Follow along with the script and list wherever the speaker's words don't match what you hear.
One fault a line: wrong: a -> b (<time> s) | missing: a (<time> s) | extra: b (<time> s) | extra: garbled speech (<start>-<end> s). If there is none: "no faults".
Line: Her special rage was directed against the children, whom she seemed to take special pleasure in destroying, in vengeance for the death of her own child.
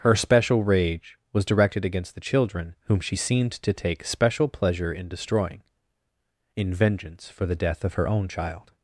no faults